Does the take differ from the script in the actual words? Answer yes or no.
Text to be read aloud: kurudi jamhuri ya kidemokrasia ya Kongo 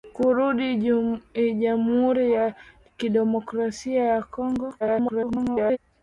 yes